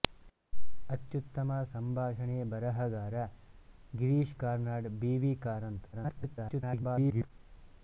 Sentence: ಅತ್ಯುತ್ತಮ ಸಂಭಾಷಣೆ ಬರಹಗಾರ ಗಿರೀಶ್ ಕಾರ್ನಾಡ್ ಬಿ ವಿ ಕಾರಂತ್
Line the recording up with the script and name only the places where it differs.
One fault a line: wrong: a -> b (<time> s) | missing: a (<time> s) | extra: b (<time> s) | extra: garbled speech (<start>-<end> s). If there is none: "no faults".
extra: garbled speech (5.9-7.3 s)